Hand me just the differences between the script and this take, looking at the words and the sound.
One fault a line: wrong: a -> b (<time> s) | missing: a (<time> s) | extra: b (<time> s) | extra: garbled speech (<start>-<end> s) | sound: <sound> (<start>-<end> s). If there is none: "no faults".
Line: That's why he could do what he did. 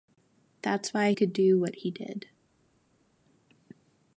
missing: he (1.1 s)